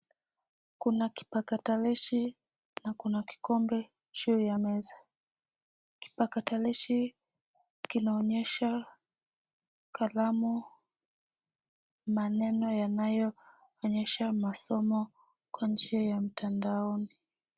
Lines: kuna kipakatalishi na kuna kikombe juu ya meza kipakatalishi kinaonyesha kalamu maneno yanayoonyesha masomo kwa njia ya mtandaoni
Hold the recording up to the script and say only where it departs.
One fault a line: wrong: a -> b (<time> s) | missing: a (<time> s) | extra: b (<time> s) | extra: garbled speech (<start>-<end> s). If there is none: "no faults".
no faults